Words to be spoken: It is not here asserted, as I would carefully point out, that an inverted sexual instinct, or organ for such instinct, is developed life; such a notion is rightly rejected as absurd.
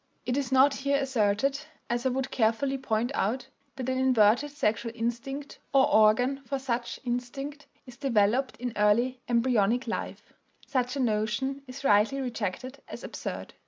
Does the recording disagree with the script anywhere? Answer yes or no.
yes